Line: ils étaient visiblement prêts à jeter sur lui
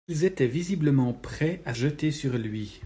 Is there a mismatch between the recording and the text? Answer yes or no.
no